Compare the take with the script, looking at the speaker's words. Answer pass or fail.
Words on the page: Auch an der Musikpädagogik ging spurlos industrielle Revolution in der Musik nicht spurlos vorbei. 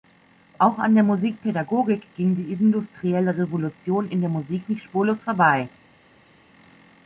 fail